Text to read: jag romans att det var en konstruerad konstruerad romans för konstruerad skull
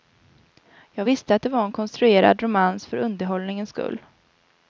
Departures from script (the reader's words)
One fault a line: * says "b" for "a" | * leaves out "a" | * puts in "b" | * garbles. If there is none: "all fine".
* says "visste" for "romans"
* leaves out "konstruerad"
* says "underhållningens" for "konstruerad"